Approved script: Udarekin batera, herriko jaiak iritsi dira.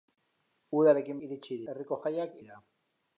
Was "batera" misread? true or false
true